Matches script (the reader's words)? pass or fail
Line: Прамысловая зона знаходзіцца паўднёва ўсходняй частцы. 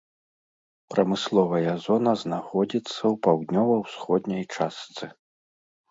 fail